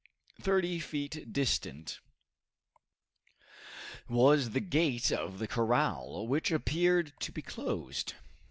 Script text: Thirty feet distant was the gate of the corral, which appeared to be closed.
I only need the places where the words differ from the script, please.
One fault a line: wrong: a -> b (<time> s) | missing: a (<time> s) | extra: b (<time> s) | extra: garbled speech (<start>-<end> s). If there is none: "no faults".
no faults